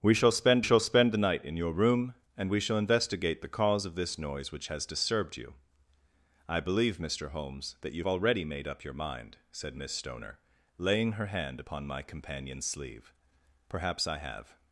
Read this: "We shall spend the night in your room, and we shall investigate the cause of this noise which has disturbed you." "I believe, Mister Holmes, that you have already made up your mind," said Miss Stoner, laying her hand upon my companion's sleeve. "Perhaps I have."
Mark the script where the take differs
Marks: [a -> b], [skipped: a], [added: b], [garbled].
"We shall spend [added: shall spend] the night in your room, and we shall investigate the cause of this noise which has disturbed you." "I believe, Mister Holmes, that you [skipped: have] already made up your mind," said Miss Stoner, laying her hand upon my companion's sleeve. "Perhaps I have."